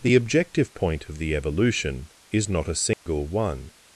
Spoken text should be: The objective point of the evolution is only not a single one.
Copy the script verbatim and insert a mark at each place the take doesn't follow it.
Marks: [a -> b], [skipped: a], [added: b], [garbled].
The objective point of the evolution is [skipped: only] not a single one.